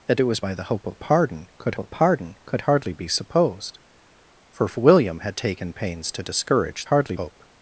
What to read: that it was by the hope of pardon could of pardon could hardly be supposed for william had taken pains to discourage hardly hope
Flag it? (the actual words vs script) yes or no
no